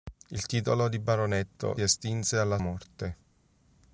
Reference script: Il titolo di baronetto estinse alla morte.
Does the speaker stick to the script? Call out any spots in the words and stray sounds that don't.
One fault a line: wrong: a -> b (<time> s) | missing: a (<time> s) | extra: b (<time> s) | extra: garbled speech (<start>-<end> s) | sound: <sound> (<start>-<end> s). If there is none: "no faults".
no faults